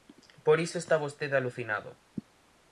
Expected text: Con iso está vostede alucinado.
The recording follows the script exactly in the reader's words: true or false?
false